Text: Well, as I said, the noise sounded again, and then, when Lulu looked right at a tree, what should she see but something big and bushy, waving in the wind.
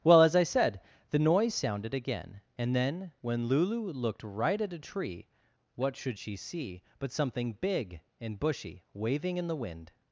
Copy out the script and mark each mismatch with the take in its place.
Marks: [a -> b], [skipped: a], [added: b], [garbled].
Well, as I said, the noise sounded again, and then, when Lulu looked right at a tree, what should she see but something big and bushy, waving in the wind.